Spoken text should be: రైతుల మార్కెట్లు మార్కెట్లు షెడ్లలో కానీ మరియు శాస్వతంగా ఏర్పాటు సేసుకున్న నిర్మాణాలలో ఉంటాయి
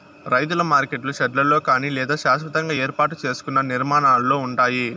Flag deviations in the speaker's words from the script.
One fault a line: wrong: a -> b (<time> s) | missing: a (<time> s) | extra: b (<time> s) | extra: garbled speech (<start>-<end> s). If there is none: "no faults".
missing: మార్కెట్లు (1.1 s)
wrong: మరియు -> లేదా (1.9 s)